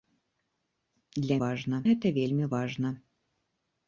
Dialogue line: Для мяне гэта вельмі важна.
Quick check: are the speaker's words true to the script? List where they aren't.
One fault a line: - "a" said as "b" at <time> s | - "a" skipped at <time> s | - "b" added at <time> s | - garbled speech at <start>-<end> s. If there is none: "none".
- "мяне" said as "важна" at 1.4 s